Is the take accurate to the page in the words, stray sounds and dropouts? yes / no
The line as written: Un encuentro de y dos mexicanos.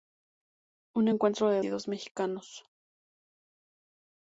yes